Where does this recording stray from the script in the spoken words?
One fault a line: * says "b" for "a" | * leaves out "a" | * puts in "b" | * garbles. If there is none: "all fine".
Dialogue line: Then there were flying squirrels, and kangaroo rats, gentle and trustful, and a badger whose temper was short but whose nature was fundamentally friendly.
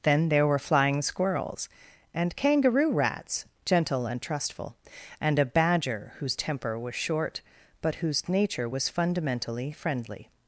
all fine